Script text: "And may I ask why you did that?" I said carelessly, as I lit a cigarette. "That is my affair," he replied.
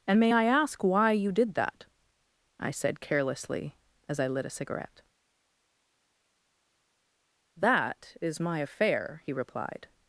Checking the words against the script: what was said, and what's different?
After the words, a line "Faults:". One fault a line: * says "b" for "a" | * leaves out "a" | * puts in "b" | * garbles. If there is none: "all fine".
"And may I ask why you did that?" I said carelessly, as I lit a cigarette. "That is my affair," he replied.
Faults:
all fine